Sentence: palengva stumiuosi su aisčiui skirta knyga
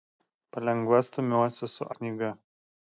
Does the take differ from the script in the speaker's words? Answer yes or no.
yes